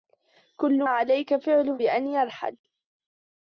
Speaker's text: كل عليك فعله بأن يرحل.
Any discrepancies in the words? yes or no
no